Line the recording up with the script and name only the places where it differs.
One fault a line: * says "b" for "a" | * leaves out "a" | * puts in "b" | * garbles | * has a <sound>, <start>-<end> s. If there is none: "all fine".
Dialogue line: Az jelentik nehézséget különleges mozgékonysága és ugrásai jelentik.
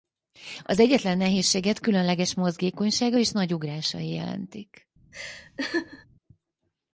* says "egyetlen" for "jelentik"
* puts in "nagy"
* has a laugh, 5.1-6.1 s